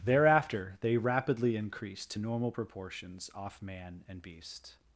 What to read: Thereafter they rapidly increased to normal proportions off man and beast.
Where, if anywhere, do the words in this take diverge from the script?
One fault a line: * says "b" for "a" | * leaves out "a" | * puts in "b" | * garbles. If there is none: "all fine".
all fine